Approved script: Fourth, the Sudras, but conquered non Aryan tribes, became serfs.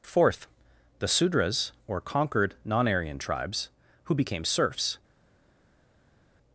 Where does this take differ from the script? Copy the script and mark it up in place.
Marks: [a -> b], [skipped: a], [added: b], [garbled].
Fourth, the Sudras, [but -> or] conquered non Aryan tribes, [added: who] became serfs.